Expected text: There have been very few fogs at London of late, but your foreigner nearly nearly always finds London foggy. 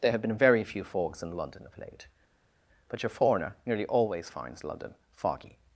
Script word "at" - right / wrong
wrong